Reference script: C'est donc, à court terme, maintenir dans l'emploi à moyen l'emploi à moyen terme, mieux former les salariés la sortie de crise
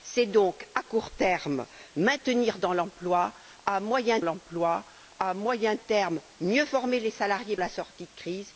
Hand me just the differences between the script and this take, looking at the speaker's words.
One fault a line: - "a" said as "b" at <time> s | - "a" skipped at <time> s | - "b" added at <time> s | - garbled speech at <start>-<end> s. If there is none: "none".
none